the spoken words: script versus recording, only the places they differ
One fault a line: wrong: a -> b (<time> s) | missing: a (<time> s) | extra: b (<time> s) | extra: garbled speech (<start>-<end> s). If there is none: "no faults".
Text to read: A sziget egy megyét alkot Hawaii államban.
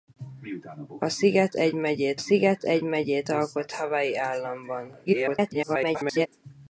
extra: sziget egy megyét (2.2 s)
extra: garbled speech (5.1-6.3 s)